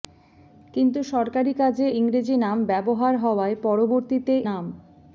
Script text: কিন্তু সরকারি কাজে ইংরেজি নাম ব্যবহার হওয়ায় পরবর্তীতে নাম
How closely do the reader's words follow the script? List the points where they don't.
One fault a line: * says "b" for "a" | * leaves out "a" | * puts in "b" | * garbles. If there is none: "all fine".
all fine